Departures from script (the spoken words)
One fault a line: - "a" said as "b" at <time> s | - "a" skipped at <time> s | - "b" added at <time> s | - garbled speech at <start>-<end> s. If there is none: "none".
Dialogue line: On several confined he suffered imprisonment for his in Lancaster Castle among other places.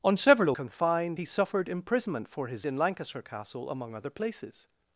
none